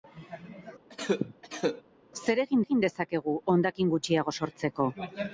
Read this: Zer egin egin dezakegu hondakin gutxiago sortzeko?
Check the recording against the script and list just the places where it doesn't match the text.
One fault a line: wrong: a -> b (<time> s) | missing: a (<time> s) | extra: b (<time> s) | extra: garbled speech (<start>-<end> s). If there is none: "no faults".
no faults